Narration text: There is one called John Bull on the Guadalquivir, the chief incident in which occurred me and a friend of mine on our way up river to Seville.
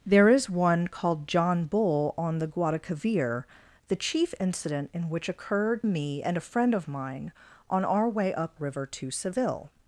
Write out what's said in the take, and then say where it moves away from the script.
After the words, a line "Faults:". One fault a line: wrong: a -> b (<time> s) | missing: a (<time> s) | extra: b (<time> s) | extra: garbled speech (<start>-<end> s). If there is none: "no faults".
There is one called John Bull on the Guadalquivir, the chief incident in which occurred me and a friend of mine on our way up river to Seville.
Faults:
no faults